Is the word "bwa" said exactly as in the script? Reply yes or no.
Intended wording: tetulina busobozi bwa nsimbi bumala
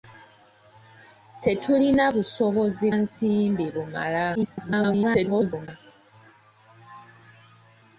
no